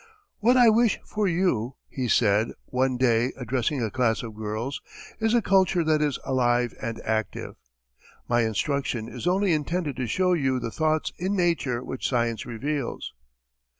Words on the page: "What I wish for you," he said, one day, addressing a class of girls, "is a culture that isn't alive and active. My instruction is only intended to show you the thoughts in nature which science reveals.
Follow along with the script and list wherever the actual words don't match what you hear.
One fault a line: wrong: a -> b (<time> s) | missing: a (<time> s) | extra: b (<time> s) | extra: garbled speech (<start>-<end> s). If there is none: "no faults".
wrong: isn't -> is (6.0 s)